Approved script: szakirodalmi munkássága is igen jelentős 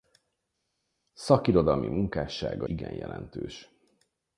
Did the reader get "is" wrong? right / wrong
wrong